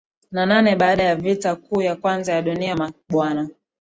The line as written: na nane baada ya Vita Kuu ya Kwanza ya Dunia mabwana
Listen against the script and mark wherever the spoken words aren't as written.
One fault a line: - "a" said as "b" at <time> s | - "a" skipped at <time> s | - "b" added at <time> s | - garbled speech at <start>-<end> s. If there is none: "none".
none